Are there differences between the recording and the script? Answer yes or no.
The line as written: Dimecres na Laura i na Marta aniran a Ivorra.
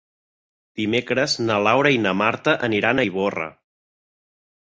no